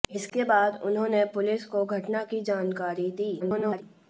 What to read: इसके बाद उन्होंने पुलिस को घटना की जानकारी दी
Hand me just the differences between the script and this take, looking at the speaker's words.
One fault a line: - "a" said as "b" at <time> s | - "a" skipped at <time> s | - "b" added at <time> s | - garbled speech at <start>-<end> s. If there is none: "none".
- garbled speech at 3.4-3.8 s